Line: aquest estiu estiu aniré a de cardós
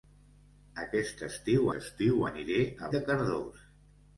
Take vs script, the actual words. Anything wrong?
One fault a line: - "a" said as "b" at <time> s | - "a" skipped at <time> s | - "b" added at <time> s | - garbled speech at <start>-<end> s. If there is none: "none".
none